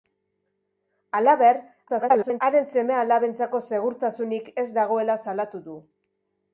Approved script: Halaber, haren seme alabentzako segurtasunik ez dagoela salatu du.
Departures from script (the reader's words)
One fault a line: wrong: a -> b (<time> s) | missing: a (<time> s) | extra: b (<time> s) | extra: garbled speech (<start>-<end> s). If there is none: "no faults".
extra: garbled speech (1.9-2.4 s)